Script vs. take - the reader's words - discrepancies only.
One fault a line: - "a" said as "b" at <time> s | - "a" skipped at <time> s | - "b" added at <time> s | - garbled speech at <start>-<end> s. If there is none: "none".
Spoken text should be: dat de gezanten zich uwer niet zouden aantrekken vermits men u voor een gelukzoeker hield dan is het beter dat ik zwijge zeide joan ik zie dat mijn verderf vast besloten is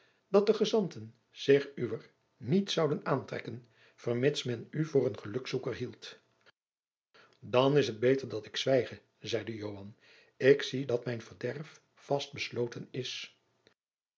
none